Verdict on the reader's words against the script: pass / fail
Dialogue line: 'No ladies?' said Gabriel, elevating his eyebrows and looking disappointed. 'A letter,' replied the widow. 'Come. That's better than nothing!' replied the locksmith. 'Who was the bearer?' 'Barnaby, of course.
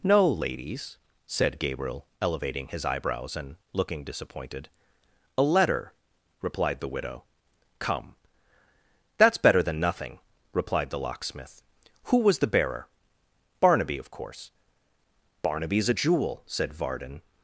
fail